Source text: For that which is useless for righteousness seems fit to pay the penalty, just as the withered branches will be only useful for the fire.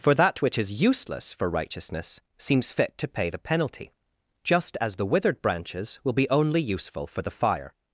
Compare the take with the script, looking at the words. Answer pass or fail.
pass